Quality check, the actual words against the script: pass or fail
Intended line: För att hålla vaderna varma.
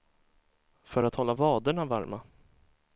pass